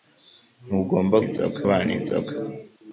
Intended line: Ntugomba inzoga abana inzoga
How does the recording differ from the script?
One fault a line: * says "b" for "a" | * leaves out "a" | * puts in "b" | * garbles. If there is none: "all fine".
all fine